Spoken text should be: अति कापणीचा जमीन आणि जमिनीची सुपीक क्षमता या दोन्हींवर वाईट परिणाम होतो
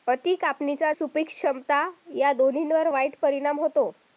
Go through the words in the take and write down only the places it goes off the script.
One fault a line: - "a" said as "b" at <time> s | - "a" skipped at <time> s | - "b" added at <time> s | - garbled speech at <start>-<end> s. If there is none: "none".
- "जमीन आणि जमिनीची" skipped at 0.9 s